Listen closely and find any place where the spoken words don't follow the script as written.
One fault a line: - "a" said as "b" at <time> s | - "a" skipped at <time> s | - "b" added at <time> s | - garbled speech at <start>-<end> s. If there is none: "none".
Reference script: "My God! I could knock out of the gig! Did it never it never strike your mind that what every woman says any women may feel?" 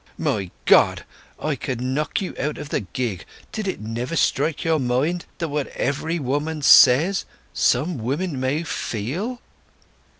- "you" added at 2.2 s
- "it never" skipped at 4.2 s
- "any" said as "some" at 7.5 s